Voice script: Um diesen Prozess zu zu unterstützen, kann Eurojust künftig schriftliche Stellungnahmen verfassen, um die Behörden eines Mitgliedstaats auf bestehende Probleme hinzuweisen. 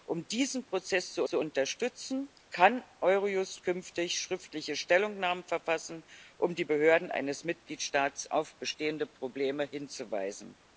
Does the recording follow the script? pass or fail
pass